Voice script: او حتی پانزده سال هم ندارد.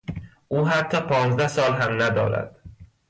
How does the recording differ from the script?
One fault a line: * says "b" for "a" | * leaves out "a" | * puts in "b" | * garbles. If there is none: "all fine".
all fine